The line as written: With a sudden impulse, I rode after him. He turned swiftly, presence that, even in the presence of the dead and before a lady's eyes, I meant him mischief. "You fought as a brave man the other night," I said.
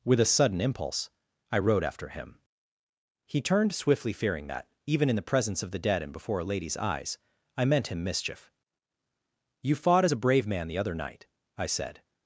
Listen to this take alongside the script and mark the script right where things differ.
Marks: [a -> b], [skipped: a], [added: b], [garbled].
With a sudden impulse, I rode after him. He turned swiftly, [presence -> fearing] that, even in the presence of the dead and before a lady's eyes, I meant him mischief. "You fought as a brave man the other night," I said.